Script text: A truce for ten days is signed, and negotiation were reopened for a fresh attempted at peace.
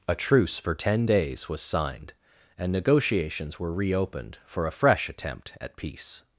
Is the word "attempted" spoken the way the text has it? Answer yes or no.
no